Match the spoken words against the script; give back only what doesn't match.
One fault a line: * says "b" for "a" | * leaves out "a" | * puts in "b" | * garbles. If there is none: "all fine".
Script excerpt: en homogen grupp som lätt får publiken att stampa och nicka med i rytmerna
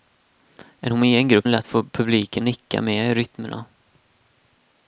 * leaves out "som"
* leaves out "att stampa och"